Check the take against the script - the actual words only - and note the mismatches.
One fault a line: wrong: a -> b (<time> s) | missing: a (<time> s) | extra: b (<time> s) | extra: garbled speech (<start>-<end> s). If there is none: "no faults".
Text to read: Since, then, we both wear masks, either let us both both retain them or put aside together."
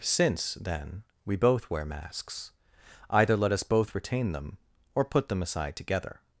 missing: both (3.9 s)
extra: them (5.3 s)